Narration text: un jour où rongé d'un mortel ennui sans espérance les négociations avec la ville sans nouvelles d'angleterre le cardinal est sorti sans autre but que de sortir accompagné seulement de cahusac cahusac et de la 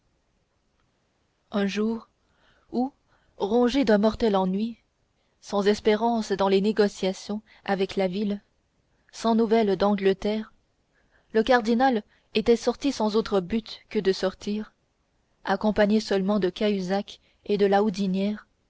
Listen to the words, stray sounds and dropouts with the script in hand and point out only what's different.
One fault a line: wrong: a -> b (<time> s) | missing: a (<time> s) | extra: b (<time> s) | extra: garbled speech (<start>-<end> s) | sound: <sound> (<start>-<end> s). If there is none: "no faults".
extra: dans (6.3 s)
wrong: est -> était (12.4 s)
missing: cahusac (17.2 s)